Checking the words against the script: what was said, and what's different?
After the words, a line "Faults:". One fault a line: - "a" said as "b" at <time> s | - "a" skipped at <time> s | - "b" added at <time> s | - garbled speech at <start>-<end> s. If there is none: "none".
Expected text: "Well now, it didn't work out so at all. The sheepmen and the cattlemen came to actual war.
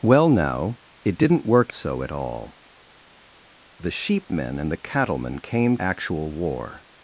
"Well now, it didn't work so at all. The sheepmen and the cattlemen came actual war.
Faults:
- "out" skipped at 1.7 s
- "to" skipped at 5.8 s